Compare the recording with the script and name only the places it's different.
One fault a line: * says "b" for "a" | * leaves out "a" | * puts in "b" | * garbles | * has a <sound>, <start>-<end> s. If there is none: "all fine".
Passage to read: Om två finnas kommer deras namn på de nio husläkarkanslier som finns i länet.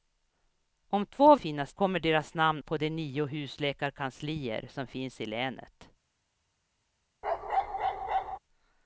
* has a bark, 7.2-8.4 s